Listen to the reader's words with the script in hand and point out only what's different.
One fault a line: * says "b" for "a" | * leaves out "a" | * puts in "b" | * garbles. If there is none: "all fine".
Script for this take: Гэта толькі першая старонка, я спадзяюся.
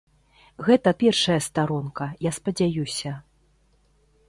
* leaves out "толькі"